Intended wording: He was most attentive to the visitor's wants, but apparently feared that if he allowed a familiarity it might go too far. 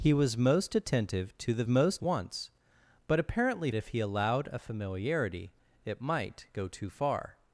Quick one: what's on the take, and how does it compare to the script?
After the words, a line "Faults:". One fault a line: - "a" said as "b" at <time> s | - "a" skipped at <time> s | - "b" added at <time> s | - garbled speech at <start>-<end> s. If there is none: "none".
He was most attentive to the most wants, but apparently if he allowed a familiarity it might go too far.
Faults:
- "visitor's" said as "most" at 1.6 s
- "feared that" skipped at 3.7 s